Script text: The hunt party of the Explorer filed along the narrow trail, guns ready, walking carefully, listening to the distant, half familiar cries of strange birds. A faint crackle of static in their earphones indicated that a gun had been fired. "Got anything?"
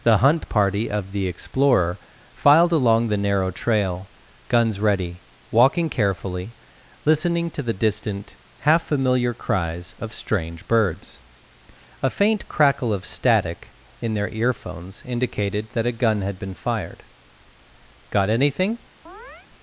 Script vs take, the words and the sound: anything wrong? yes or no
yes